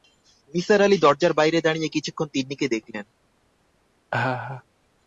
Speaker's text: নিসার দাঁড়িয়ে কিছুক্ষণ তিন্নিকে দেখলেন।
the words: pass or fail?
fail